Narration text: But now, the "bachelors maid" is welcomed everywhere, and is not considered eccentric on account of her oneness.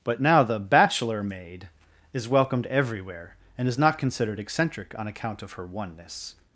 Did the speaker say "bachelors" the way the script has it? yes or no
no